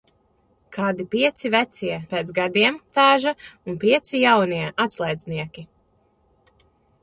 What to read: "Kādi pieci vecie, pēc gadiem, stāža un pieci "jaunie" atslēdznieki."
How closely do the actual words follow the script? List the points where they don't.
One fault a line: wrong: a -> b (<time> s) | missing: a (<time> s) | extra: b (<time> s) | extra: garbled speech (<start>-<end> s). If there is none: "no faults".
no faults